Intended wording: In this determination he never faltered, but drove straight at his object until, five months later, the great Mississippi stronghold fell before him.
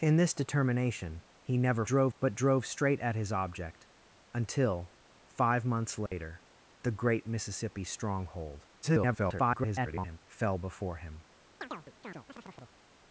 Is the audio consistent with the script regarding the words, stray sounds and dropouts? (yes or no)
no